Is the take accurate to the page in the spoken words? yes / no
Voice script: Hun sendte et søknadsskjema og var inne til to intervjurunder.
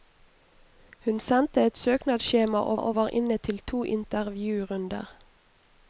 no